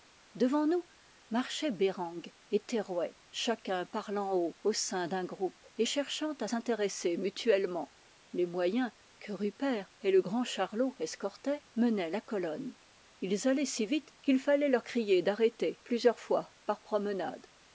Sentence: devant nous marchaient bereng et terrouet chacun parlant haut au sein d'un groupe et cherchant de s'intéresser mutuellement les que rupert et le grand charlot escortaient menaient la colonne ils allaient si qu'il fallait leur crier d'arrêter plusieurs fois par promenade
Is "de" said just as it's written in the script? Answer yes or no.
no